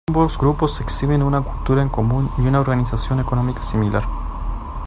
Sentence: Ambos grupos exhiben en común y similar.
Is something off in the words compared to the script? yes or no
yes